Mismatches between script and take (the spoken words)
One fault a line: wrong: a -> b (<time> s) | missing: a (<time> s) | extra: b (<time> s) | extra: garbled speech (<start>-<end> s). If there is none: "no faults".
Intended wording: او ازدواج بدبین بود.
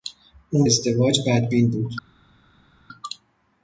no faults